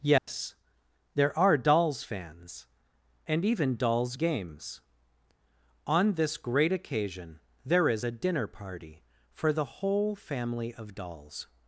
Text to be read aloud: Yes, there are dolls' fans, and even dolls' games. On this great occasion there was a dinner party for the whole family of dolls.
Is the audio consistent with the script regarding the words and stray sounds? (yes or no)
no